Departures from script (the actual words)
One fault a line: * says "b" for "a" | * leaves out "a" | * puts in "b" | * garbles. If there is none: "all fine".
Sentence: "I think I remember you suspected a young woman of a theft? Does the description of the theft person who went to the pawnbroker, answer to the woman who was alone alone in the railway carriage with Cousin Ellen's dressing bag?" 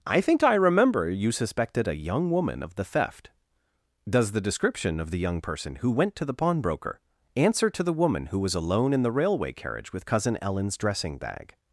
* says "the" for "a"
* says "young" for "theft"
* leaves out "alone"